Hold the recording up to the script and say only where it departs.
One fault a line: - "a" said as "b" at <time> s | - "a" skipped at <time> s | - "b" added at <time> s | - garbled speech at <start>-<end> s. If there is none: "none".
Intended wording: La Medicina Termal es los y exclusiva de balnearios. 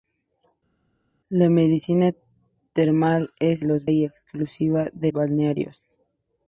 none